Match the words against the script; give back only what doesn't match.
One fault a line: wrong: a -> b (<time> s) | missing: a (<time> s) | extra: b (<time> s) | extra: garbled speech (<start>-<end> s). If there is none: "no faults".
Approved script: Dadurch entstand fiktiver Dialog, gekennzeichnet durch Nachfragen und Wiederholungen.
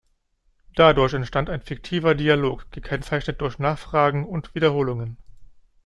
extra: ein (1.5 s)